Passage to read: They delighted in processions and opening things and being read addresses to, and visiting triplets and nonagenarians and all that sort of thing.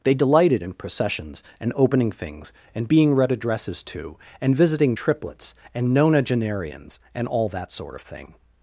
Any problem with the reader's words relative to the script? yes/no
no